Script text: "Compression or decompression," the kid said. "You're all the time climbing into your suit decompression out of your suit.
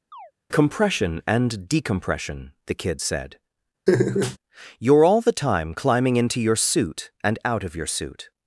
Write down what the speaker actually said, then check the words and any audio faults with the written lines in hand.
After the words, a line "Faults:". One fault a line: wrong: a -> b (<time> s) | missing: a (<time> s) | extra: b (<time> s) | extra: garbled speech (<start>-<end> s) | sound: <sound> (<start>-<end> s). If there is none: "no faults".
"Compression and decompression," the kid said. "You're all the time climbing into your suit and out of your suit.
Faults:
sound: chirp (0.1-0.3 s)
wrong: or -> and (1.2 s)
sound: laugh (3.9-4.4 s)
wrong: decompression -> and (7.2 s)